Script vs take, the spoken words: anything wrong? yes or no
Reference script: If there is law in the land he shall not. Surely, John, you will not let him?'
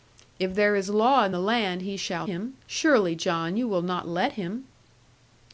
yes